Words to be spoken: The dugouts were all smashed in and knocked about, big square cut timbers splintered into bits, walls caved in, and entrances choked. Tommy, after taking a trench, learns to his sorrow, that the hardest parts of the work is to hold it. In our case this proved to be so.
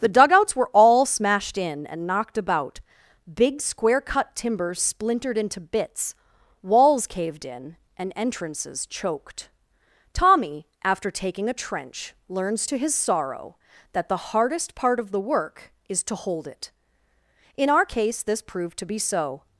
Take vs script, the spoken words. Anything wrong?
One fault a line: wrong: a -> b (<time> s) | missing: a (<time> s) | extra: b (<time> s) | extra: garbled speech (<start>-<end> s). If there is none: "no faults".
wrong: parts -> part (14.7 s)